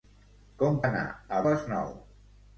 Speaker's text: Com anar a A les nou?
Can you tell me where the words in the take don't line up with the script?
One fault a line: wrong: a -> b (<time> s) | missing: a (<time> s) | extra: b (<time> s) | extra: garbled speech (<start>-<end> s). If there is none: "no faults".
no faults